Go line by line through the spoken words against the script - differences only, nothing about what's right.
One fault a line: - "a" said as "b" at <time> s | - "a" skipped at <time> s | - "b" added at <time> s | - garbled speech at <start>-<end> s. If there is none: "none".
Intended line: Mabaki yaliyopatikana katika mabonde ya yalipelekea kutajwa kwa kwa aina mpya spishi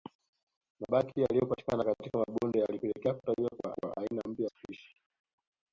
none